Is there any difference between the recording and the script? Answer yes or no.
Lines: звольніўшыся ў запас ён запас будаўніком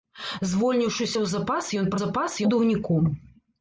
no